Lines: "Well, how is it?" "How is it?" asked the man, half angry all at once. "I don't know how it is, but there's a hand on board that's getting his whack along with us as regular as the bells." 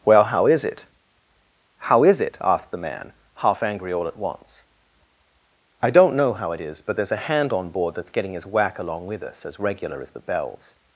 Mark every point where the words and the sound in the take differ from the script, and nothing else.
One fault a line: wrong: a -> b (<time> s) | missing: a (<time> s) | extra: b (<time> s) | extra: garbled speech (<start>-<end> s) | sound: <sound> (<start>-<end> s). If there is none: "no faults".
no faults